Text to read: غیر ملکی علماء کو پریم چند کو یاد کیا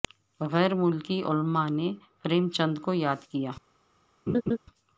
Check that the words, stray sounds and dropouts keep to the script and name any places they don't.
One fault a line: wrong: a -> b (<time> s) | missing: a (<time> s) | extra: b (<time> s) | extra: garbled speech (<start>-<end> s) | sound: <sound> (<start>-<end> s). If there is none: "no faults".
wrong: کو -> نے (1.7 s)
sound: laugh (4.3-4.6 s)